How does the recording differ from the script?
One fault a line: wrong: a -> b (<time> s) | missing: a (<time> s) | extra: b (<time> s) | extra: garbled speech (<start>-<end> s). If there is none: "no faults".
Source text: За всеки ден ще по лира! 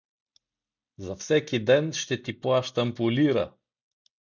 extra: ти плащам (2.2 s)